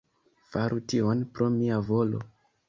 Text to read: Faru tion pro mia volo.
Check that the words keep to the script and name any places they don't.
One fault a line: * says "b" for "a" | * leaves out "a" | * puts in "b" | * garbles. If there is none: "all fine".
all fine